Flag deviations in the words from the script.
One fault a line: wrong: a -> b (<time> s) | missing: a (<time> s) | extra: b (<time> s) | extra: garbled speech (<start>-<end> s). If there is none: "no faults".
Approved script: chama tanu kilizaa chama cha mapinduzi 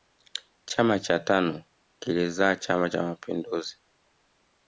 extra: cha (1.0 s)